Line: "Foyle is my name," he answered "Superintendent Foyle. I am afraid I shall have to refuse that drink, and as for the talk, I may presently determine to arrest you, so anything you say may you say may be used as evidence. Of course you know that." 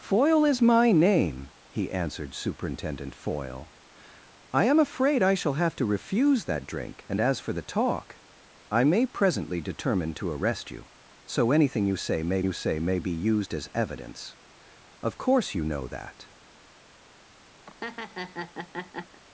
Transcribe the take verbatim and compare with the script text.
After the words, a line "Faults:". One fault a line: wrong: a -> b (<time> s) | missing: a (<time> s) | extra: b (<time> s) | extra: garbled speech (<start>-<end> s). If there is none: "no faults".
"Foyle is my name," he answered "Superintendent Foyle. I am afraid I shall have to refuse that drink, and as for the talk, I may presently determine to arrest you, so anything you say may you say may be used as evidence. Of course you know that."
Faults:
no faults